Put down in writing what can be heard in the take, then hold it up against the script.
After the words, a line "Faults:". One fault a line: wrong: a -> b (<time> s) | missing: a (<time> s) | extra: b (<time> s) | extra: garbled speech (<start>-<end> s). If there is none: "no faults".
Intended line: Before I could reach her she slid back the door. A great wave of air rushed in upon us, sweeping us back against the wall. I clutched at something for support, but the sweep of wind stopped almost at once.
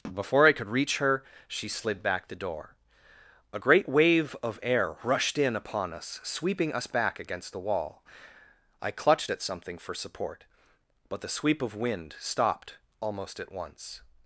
Before I could reach her she slid back the door. A great wave of air rushed in upon us, sweeping us back against the wall. I clutched at something for support, but the sweep of wind stopped almost at once.
Faults:
no faults